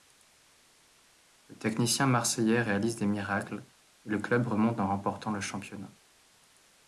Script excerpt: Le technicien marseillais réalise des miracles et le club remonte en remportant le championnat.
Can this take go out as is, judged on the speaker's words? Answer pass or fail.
pass